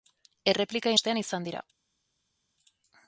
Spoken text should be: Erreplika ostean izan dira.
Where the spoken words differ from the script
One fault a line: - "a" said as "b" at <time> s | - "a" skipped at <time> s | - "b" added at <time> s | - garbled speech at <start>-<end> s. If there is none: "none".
none